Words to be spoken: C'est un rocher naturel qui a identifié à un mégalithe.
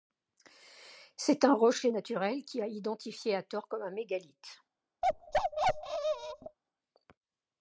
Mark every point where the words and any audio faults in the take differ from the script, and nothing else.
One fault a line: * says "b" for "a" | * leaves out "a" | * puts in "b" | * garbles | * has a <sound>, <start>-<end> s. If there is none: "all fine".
* puts in "tort comme"
* has a bark, 5.0-6.6 s